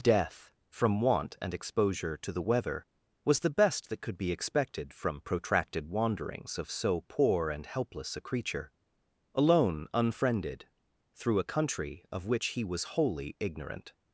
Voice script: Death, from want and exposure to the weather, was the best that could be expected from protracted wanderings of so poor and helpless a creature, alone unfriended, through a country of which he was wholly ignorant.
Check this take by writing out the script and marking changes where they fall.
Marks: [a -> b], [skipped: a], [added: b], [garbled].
Death, from want and exposure to the weather, was the best that could be expected from protracted wanderings of so poor and helpless a creature, alone unfriended, through a country of which he was wholly ignorant.